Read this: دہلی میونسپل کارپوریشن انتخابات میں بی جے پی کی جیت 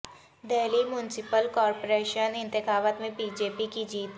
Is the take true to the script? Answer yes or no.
yes